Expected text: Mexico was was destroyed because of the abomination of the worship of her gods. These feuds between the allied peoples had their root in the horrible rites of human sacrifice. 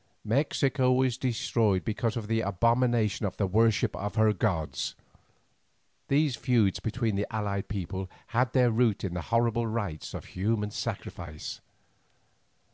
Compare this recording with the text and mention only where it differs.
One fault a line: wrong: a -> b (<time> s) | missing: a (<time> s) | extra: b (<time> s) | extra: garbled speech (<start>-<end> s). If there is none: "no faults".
missing: was (1.1 s)